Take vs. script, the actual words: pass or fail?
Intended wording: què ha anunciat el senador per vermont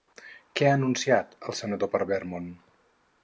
pass